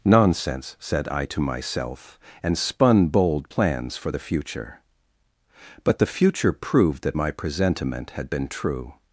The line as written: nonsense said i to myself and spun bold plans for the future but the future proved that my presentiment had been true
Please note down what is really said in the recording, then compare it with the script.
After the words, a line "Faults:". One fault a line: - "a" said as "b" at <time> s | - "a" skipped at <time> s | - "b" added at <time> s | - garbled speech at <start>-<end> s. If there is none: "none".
nonsense said i to myself and spun bold plans for the future but the future proved that my presentiment had been true
Faults:
none